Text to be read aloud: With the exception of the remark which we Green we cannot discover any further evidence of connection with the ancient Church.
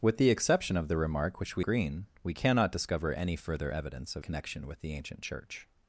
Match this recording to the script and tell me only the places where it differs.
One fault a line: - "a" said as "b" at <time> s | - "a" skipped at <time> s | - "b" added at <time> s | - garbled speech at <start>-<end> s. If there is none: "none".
none